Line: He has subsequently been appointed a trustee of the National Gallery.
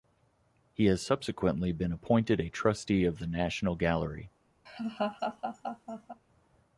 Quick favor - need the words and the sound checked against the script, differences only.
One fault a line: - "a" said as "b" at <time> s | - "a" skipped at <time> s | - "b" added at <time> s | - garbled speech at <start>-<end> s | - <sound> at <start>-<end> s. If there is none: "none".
- laugh at 4.7-6.2 s